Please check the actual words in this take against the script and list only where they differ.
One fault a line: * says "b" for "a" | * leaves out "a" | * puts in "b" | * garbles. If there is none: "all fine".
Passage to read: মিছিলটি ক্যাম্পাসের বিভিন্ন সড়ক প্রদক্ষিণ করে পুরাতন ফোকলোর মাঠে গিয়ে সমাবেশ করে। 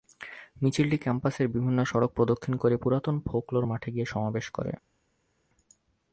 all fine